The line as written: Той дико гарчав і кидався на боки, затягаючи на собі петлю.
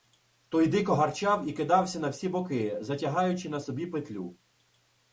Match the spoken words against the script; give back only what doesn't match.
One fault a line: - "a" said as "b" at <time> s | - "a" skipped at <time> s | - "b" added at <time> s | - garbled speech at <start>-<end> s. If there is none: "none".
- "всі" added at 2.1 s